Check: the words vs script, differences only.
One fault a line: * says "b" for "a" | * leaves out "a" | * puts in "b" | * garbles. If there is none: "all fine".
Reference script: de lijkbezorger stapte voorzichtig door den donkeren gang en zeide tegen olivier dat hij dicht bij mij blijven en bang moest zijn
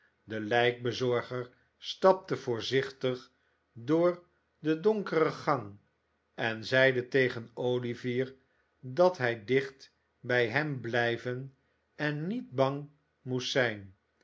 * says "hem" for "mij"
* puts in "niet"